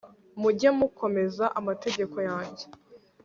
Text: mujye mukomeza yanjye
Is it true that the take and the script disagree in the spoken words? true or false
true